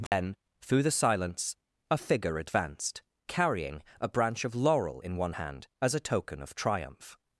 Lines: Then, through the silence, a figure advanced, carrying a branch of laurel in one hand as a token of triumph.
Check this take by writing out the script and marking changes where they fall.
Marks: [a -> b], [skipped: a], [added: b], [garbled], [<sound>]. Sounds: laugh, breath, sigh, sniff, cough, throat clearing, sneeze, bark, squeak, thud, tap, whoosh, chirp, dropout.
Then, [dropout] through the silence, a figure advanced, carrying a branch of laurel in one hand as a token of triumph.